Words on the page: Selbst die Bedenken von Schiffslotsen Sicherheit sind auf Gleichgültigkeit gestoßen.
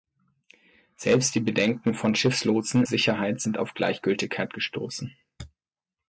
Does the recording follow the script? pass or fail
pass